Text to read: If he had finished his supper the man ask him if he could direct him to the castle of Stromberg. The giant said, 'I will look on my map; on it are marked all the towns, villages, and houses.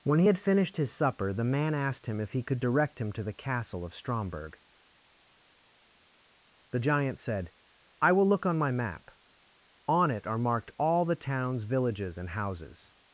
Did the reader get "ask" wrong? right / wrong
wrong